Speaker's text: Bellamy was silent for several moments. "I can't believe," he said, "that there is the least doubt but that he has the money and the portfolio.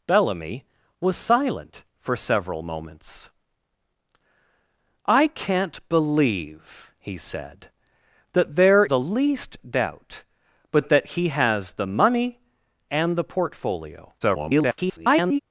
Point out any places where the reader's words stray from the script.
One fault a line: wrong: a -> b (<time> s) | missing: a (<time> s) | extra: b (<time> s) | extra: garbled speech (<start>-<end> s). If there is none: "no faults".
missing: is (8.9 s)
extra: garbled speech (14.2-15.4 s)